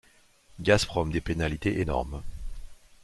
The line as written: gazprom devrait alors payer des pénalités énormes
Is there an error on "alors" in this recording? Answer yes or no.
yes